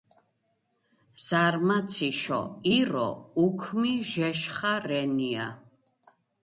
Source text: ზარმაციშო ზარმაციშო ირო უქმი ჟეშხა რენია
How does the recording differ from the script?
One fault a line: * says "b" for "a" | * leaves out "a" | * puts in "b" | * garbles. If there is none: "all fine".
* leaves out "ზარმაციშო"